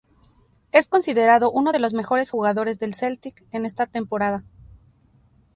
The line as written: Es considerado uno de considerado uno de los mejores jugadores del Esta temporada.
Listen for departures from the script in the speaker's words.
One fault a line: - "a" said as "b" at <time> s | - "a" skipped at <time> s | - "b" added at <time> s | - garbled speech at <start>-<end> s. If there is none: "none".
- "considerado uno de" skipped at 1.8 s
- "Celtic en" added at 2.9 s